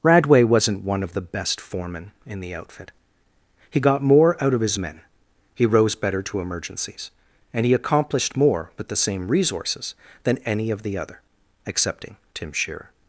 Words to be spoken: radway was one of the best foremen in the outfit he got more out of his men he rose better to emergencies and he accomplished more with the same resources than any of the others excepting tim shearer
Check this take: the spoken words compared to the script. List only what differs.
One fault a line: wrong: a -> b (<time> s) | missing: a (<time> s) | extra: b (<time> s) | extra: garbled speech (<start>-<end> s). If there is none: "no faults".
wrong: was -> wasn't (0.4 s)
wrong: others -> other (11.0 s)